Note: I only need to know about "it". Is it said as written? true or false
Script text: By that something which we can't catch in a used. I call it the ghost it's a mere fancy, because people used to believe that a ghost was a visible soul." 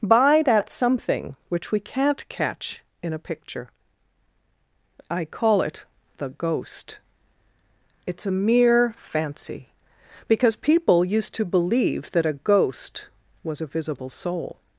true